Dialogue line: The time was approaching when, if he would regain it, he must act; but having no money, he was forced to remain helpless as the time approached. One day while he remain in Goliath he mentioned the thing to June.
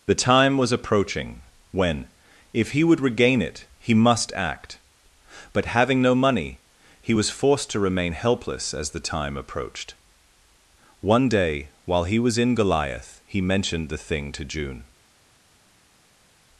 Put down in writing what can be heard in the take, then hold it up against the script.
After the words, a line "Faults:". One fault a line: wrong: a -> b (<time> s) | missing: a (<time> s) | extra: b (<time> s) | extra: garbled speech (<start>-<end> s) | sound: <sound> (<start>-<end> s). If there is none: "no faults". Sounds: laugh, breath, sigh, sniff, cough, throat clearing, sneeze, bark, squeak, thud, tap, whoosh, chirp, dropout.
The time was approaching when, if he would regain it, he must act; but having no money, he was forced to remain helpless as the time approached. One day while he was in Goliath he mentioned the thing to June.
Faults:
wrong: remain -> was (12.2 s)